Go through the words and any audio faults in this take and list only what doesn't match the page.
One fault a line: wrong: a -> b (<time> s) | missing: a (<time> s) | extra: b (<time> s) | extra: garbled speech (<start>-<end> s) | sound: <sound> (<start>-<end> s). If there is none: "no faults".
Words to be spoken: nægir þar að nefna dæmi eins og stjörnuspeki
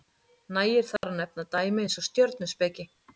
sound: dropout (1.0-1.0 s)